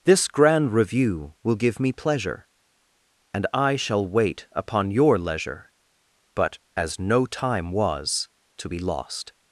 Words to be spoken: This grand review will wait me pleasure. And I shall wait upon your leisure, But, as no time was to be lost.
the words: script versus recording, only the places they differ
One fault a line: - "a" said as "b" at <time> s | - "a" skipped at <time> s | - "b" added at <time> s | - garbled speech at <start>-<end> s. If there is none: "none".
- "wait" said as "give" at 1.6 s